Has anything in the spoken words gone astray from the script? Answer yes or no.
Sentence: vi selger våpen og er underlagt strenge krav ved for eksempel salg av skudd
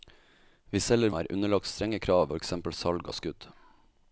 yes